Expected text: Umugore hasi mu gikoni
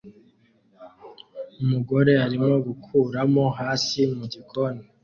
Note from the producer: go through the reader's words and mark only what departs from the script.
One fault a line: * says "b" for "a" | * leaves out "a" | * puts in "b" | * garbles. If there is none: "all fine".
* puts in "arimo gukuramo"